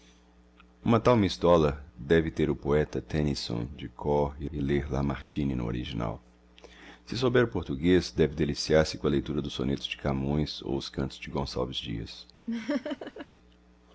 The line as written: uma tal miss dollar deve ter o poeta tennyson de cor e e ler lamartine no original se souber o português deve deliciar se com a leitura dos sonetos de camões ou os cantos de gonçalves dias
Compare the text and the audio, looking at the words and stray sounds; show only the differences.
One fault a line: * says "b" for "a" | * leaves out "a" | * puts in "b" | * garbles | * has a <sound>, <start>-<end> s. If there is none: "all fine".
* has a dropout, 5.2-5.4 s
* has a laugh, 12.5-13.3 s